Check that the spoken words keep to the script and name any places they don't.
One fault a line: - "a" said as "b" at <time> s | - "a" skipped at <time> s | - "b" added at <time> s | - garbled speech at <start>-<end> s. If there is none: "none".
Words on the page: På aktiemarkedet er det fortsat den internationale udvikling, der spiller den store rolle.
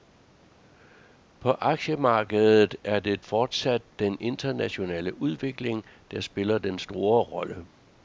none